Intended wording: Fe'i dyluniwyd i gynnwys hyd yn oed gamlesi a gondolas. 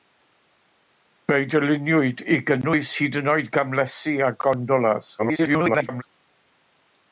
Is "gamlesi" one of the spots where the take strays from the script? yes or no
no